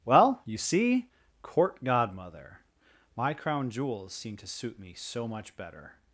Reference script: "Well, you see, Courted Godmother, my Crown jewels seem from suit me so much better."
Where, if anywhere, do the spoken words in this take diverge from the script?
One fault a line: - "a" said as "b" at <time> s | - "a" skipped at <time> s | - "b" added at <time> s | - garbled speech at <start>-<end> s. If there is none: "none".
- "Courted" said as "Court" at 1.4 s
- "from" said as "to" at 4.4 s